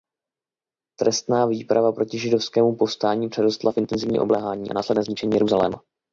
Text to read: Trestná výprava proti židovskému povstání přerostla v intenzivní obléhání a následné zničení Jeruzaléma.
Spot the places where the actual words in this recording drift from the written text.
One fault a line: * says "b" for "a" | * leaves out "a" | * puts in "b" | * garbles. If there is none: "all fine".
all fine